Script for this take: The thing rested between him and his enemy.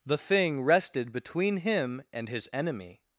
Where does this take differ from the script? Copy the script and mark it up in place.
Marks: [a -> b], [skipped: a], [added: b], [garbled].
The thing rested between him and his enemy.